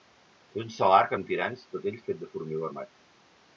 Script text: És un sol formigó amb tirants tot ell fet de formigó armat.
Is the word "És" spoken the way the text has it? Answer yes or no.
yes